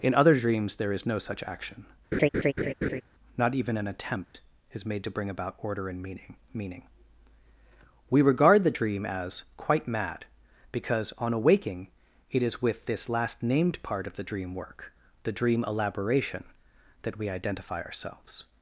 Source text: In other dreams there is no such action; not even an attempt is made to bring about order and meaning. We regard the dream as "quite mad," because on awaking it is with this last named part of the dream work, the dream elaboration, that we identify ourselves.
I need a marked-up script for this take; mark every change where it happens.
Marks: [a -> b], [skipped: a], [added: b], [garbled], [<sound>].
In other dreams there is no such action; [laugh] not even an attempt [dropout] is made to bring about order and meaning. [added: meaning] We regard the dream as "quite mad," because on awaking it is with this last named part of the dream work, the dream elaboration, that we identify ourselves.